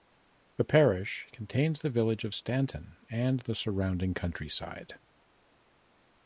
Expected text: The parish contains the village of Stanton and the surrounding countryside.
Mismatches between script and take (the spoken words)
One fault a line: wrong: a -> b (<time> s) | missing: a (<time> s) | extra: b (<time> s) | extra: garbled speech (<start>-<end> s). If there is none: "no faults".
no faults